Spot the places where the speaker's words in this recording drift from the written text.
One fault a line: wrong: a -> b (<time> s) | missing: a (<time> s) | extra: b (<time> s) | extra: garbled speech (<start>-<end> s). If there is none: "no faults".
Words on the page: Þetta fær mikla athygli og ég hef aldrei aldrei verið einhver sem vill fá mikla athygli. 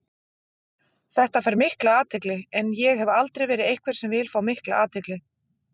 wrong: og -> en (2.6 s)
missing: aldrei (3.5 s)